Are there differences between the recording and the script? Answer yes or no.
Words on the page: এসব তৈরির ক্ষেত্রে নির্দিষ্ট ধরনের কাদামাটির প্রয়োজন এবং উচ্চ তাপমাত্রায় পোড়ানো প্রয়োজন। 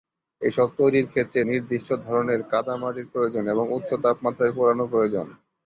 no